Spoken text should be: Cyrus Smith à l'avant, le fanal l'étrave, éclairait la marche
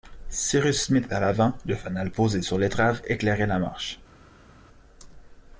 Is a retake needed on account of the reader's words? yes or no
yes